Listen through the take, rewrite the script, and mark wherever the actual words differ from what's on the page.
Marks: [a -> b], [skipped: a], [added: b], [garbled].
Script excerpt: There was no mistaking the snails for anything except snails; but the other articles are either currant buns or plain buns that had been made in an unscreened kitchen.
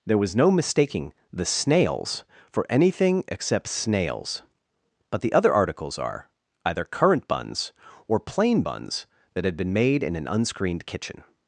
There was no mistaking the snails for anything except snails; but the other articles are either currant buns or plain buns that had been made in an unscreened kitchen.